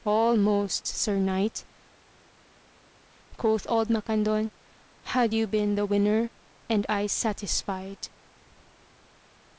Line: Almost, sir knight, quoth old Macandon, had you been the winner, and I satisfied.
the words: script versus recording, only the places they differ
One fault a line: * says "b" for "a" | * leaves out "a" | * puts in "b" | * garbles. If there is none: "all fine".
all fine